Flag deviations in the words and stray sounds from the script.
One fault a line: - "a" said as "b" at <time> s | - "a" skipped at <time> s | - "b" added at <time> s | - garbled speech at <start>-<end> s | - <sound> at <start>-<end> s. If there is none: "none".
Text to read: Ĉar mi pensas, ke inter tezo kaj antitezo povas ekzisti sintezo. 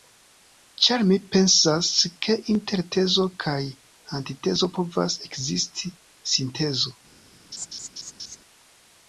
- laugh at 7.5-8.4 s